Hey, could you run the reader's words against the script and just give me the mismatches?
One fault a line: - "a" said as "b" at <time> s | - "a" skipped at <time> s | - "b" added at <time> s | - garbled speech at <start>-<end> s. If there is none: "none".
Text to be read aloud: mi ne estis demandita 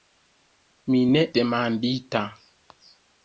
- "estis" skipped at 1.2 s